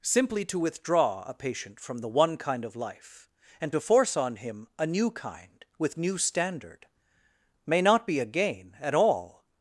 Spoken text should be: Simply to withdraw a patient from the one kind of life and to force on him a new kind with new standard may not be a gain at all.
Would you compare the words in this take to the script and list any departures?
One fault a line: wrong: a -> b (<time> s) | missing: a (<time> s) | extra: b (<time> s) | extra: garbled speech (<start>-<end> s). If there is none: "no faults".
no faults